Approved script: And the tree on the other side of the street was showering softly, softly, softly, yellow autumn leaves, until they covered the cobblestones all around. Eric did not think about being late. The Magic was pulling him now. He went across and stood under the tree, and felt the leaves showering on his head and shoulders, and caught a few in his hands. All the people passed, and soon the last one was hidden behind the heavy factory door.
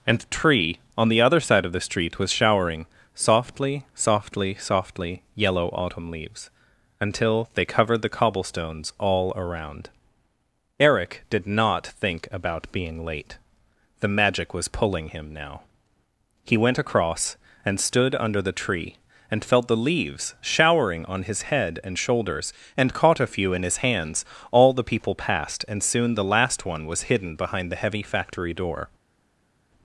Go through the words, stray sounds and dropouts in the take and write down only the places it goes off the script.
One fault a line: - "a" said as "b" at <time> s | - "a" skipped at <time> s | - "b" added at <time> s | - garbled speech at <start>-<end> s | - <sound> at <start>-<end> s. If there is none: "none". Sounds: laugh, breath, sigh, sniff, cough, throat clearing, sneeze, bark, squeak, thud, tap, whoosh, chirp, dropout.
none